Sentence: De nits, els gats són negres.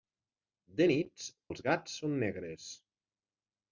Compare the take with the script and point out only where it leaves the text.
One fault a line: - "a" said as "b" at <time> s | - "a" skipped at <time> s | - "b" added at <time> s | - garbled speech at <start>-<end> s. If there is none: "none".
none